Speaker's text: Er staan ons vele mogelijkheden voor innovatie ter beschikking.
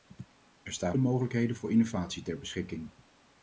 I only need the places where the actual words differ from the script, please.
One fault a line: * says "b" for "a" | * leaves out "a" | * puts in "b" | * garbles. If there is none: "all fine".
* leaves out "ons vele"